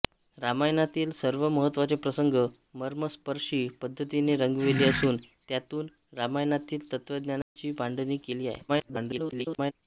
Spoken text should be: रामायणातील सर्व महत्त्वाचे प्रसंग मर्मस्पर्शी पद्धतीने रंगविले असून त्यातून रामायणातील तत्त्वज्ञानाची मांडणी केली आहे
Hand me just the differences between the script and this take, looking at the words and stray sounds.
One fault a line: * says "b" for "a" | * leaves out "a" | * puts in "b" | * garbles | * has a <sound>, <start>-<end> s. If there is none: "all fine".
* has a dropout, 7.4-7.6 s
* garbles